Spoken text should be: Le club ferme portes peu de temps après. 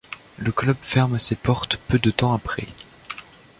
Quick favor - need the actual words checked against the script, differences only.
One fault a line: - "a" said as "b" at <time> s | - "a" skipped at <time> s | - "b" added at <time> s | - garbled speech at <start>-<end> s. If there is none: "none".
- "ses" added at 1.2 s